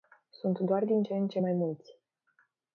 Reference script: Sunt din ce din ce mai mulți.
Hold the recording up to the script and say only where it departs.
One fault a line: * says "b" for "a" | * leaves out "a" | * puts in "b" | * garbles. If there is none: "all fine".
* puts in "doar"
* says "în" for "din"